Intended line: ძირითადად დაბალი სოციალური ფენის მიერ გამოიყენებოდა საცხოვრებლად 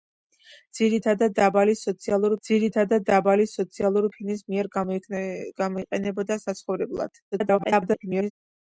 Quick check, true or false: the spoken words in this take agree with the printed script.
false